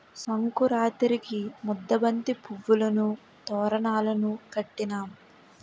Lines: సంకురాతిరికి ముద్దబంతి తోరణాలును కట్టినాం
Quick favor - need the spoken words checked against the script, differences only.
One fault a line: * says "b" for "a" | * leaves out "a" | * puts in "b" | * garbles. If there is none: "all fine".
* puts in "పువ్వులును"